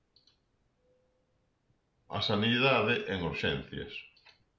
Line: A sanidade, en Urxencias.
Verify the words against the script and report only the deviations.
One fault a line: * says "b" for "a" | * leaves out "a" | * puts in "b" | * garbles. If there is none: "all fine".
all fine